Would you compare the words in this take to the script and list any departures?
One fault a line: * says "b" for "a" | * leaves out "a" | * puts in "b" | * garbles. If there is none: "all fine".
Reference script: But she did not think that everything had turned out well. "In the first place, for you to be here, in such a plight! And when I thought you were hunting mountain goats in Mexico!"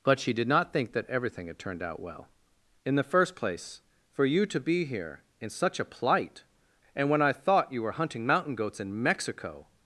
all fine